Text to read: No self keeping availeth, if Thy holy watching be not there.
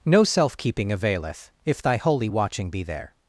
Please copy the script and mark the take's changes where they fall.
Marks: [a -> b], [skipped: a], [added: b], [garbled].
No self keeping availeth, if Thy holy watching be [skipped: not] there.